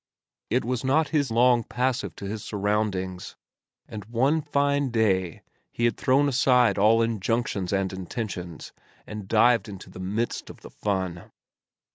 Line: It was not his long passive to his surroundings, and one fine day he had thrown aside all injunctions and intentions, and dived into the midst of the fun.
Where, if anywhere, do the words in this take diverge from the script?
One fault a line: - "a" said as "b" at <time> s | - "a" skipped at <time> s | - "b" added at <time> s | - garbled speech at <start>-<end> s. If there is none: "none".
none